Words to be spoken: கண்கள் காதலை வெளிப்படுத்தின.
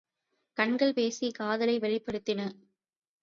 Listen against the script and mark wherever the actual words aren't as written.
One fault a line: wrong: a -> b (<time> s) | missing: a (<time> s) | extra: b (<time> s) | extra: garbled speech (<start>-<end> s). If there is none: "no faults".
extra: பேசிக் (0.9 s)